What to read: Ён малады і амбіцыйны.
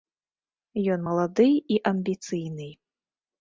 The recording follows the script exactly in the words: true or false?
true